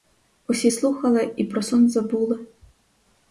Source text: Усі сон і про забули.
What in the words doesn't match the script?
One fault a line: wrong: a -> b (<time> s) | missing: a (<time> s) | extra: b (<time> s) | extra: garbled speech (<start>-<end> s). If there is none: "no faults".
wrong: сон -> слухали (0.7 s)
extra: сон (1.6 s)